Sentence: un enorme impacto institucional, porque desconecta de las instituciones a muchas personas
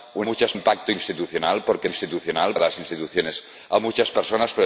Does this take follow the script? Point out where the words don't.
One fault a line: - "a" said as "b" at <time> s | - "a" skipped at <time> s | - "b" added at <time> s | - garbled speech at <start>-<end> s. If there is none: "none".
- "enorme" said as "muchas" at 0.2 s
- "desconecta" said as "institucional" at 1.8 s